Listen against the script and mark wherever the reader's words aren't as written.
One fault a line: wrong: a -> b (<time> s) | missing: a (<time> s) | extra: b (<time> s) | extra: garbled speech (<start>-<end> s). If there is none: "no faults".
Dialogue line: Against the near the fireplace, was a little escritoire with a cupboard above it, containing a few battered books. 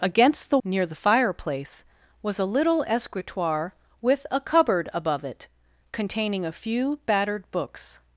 no faults